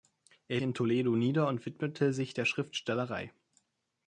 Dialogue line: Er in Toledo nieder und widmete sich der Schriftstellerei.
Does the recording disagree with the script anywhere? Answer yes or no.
no